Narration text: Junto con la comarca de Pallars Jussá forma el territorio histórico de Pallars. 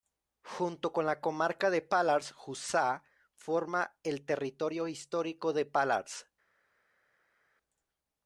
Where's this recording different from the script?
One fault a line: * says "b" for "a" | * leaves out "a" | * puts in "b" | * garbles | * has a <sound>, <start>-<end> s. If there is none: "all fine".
all fine